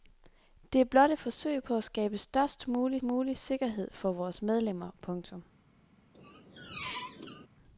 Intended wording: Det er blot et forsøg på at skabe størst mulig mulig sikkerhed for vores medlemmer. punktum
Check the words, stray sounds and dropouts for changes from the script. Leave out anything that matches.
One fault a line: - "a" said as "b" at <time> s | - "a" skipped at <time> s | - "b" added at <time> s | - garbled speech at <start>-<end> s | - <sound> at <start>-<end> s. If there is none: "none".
- squeak at 6.1-7.5 s